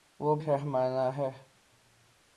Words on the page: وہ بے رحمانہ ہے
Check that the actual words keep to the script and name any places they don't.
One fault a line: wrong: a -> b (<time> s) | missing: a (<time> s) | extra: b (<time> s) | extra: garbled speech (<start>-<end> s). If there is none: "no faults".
missing: بے (0.3 s)